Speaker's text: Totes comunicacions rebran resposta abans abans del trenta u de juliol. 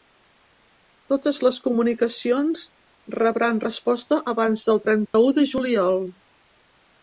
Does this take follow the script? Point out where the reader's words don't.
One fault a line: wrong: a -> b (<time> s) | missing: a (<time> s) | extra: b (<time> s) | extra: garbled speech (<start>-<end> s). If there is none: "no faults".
extra: les (1.5 s)
missing: abans (4.7 s)